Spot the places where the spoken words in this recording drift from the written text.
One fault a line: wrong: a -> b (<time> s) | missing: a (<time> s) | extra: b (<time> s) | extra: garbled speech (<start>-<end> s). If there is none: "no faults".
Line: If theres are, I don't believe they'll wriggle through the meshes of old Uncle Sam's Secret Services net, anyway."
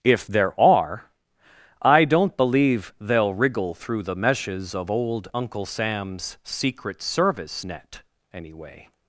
wrong: theres -> there (0.2 s)
wrong: Services -> Service (7.0 s)